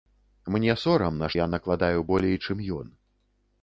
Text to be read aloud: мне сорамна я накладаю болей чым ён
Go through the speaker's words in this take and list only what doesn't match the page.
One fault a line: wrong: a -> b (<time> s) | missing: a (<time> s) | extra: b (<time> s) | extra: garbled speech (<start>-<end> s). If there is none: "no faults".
no faults